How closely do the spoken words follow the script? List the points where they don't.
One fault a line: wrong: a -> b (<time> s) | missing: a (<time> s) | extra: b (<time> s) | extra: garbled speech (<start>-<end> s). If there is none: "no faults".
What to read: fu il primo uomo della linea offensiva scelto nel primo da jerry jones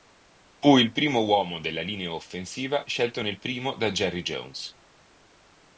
no faults